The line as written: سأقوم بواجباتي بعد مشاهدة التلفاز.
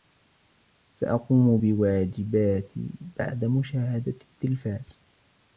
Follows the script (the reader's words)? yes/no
yes